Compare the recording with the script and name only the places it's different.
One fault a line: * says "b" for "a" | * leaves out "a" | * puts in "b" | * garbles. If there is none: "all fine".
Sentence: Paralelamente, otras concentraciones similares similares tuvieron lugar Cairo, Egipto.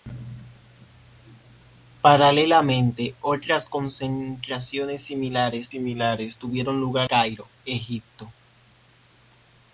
all fine